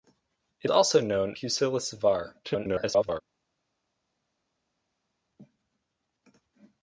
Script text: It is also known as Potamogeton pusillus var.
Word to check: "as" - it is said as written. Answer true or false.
false